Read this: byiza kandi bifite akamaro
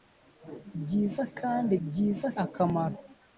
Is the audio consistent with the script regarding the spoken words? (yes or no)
no